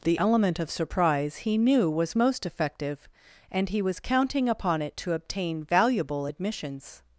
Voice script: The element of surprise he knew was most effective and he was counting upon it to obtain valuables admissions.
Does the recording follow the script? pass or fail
fail